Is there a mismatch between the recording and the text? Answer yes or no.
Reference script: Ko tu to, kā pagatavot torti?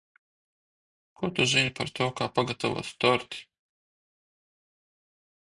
yes